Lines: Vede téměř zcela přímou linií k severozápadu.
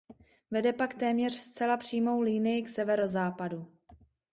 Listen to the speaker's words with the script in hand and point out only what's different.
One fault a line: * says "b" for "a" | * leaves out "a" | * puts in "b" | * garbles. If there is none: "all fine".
* puts in "pak"